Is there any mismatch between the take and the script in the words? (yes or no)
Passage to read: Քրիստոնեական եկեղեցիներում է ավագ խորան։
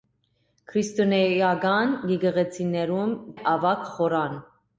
no